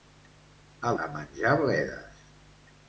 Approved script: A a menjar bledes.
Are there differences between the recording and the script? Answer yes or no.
no